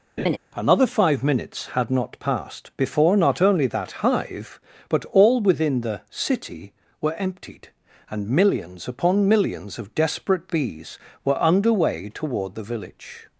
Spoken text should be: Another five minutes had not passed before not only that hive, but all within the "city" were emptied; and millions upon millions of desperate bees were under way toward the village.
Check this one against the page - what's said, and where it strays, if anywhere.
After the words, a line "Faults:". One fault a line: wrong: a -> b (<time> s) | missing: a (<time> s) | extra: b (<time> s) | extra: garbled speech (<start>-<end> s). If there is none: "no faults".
Another five minutes had not passed before not only that hive, but all within the "city" were emptied; and millions upon millions of desperate bees were under way toward the village.
Faults:
no faults